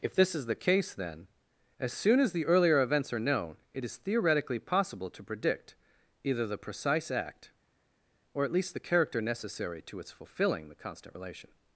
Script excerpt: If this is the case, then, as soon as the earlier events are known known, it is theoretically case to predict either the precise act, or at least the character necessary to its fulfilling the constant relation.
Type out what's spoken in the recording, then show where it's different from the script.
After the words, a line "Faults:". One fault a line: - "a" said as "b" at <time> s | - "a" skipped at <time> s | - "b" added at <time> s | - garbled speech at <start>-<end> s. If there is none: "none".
If this is the case, then, as soon as the earlier events are known, it is theoretically possible to predict either the precise act, or at least the character necessary to its fulfilling the constant relation.
Faults:
- "known" skipped at 3.6 s
- "case" said as "possible" at 4.6 s